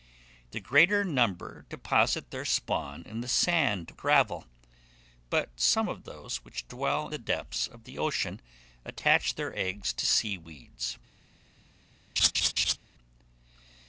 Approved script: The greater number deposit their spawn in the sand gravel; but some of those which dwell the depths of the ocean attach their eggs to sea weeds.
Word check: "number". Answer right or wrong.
right